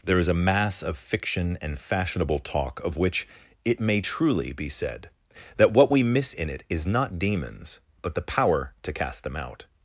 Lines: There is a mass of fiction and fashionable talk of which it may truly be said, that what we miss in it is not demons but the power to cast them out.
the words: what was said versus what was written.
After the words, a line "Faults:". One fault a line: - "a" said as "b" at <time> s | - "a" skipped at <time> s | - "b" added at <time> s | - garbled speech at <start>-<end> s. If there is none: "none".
There is a mass of fiction and fashionable talk of which it may truly be said, that what we miss in it is not demons but the power to cast them out.
Faults:
none